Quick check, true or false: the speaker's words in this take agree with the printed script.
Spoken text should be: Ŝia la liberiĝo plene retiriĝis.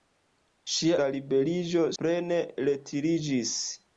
true